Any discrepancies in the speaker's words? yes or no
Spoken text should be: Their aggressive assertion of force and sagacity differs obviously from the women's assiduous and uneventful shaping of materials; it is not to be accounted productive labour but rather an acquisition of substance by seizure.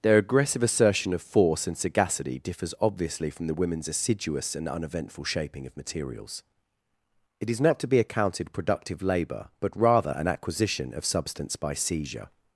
no